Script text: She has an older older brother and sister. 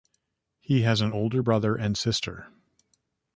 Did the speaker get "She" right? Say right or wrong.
wrong